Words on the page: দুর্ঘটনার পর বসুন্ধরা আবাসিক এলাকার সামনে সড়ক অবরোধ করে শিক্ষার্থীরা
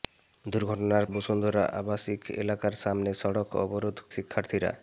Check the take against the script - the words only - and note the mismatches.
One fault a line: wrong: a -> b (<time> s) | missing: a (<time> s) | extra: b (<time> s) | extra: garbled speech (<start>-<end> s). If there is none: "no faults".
missing: পর (1.1 s)
missing: করে (4.0 s)